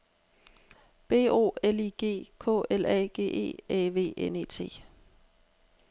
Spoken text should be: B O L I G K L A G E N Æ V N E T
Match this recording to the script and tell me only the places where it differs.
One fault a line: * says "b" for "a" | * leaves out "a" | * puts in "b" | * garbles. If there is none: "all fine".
* leaves out "N"